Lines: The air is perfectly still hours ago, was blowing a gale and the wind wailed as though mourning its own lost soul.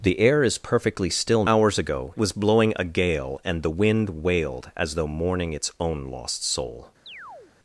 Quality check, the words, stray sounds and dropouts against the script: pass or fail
fail